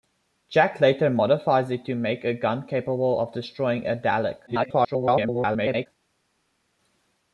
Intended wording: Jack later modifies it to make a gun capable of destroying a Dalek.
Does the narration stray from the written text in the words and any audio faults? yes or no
yes